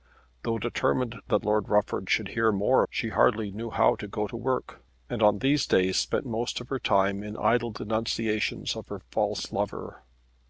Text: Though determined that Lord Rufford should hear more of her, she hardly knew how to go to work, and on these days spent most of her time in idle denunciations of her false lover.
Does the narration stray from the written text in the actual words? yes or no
yes